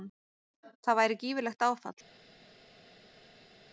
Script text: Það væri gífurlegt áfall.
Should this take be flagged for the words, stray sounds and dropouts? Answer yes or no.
no